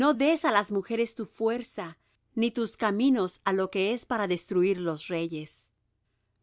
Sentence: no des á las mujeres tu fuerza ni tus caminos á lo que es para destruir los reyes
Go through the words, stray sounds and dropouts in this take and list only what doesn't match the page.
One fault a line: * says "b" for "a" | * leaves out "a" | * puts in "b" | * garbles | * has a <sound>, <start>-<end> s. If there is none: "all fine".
all fine